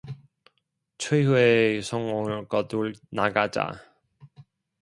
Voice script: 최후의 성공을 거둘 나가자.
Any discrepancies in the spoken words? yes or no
no